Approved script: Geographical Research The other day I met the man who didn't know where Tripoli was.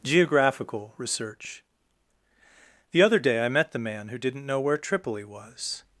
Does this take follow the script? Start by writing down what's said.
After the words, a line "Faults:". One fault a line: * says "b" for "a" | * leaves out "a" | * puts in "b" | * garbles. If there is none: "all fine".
Geographical Research The other day I met the man who didn't know where Tripoli was.
Faults:
all fine